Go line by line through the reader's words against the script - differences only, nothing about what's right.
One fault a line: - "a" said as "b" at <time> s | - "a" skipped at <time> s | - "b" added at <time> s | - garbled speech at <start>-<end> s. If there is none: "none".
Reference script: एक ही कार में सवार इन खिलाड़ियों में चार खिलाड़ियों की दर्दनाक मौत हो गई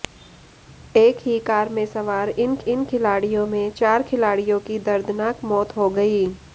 - "इन" added at 2.6 s